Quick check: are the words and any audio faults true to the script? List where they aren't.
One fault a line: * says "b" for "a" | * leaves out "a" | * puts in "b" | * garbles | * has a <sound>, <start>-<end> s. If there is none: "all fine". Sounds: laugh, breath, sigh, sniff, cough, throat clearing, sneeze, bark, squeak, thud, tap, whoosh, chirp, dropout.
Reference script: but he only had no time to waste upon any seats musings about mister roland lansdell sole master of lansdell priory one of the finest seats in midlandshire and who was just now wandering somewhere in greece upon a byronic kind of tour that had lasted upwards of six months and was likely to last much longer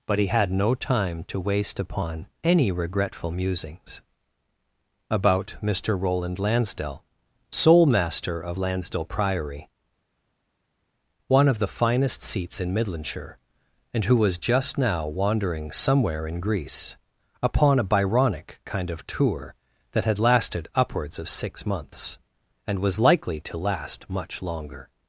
* leaves out "only"
* says "regretful" for "seats"